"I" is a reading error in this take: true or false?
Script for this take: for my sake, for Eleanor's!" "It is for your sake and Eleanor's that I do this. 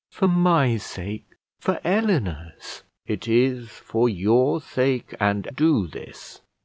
true